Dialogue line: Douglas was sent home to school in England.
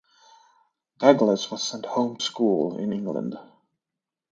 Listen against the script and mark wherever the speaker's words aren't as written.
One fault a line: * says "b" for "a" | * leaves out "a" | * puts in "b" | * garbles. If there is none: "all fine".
* leaves out "to"